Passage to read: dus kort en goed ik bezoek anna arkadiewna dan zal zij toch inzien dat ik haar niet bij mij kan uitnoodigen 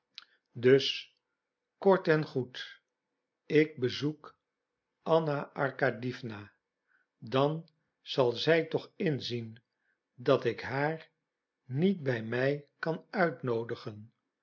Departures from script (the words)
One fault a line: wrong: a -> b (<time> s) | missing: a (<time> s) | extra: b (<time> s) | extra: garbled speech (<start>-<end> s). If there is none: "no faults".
no faults